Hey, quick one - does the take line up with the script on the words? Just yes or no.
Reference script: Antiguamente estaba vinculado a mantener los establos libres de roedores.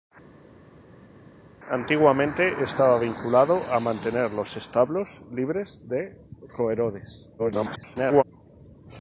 no